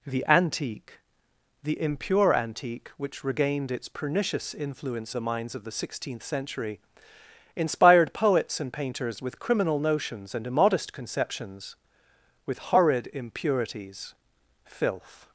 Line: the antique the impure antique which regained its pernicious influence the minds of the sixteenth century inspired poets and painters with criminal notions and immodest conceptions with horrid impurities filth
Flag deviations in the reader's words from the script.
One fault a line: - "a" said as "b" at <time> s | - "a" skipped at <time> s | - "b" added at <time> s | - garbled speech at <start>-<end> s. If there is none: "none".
none